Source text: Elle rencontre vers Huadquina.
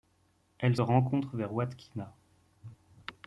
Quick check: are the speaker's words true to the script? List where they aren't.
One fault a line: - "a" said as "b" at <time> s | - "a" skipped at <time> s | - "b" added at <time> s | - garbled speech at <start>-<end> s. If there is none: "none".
none